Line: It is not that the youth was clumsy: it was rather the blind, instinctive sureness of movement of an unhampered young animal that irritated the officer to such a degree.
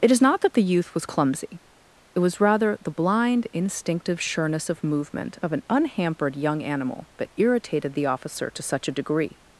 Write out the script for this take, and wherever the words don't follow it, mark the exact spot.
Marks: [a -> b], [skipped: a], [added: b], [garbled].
It is not that the youth was clumsy: it was rather the blind, instinctive sureness of movement of an unhampered young animal that irritated the officer to such a degree.